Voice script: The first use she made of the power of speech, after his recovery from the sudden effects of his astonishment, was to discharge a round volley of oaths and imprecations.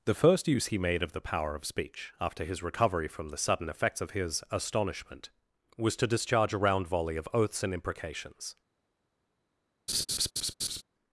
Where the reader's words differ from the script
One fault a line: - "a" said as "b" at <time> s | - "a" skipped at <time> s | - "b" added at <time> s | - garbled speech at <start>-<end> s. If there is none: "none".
- "she" said as "he" at 0.7 s